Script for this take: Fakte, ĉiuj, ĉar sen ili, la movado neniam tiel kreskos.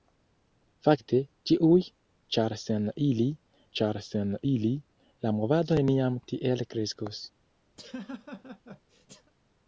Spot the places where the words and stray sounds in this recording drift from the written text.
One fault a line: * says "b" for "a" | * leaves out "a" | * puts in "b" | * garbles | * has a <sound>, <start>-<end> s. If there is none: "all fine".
* puts in "ĉar sen ili"
* has a laugh, 7.8-9.3 s